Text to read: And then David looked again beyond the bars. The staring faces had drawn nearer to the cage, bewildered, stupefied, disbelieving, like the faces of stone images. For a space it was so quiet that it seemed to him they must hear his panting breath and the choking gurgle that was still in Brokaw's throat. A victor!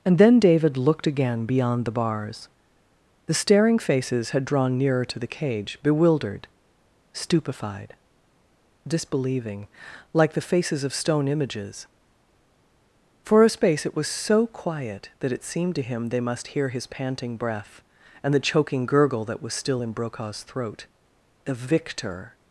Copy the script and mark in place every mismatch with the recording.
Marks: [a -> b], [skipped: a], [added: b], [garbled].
And then David looked again beyond the bars. The staring faces had drawn nearer to the cage, bewildered, stupefied, disbelieving, like the faces of stone images. For a space it was so quiet that it seemed to him they must hear his panting breath and the choking gurgle that was still in Brokaw's throat. [A -> The] victor!